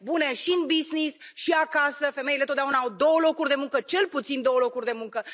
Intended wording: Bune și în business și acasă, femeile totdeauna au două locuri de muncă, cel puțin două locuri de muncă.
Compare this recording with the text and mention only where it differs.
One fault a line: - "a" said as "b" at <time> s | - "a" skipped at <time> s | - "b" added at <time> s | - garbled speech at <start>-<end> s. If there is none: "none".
none